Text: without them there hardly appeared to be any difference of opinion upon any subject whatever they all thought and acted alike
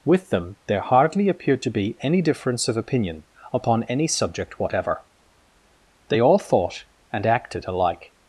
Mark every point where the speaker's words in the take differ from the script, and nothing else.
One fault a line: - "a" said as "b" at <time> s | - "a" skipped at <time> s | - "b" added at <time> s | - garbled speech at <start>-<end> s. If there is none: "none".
- "without" said as "with" at 0.0 s